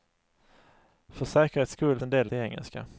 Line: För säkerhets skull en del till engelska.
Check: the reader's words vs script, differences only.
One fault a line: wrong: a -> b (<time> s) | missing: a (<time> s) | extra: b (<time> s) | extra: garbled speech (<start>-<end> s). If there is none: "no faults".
no faults